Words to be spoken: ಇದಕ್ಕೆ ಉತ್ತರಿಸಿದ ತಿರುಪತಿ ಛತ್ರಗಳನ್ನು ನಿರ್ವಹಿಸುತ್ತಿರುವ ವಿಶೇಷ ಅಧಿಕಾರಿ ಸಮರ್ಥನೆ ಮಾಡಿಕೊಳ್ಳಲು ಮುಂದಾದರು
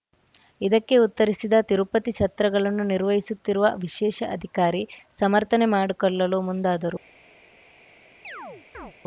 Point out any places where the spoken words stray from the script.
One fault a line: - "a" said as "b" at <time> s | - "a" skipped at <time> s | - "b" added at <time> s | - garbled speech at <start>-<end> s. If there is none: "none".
none